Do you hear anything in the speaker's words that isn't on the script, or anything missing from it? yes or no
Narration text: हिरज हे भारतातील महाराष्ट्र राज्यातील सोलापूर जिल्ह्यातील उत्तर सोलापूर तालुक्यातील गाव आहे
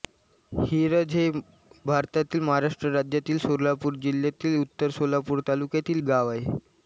no